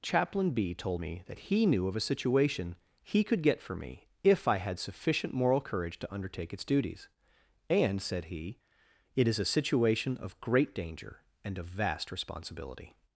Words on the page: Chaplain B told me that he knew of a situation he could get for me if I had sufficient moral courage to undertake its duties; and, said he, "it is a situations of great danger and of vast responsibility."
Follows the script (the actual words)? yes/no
no